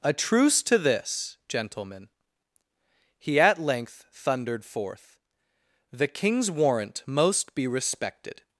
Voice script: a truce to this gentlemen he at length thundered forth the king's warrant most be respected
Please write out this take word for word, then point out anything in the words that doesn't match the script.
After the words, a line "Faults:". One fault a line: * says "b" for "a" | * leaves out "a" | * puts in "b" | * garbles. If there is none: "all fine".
a truce to this gentlemen he at length thundered forth the king's warrant most be respected
Faults:
all fine